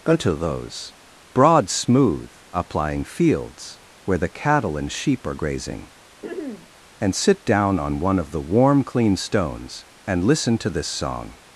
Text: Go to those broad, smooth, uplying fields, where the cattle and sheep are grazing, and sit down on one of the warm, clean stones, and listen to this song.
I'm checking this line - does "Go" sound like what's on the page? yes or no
no